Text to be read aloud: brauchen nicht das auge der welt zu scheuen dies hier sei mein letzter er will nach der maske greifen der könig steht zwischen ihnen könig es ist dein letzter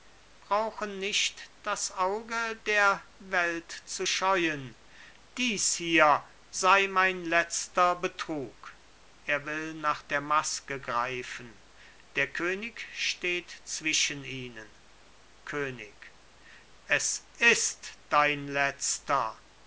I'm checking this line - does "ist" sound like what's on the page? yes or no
yes